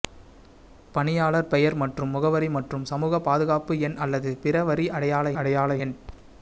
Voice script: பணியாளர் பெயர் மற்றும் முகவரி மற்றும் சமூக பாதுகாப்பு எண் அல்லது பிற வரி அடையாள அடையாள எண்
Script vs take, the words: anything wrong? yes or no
no